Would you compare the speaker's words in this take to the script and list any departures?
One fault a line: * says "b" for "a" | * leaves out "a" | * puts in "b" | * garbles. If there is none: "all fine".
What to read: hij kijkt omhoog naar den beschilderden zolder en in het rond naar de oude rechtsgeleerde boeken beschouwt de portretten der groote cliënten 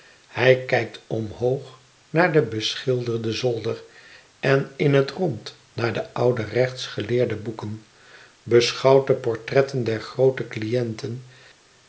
all fine